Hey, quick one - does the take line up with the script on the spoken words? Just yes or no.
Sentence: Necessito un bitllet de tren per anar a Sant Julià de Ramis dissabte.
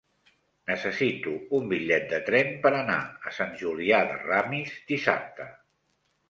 yes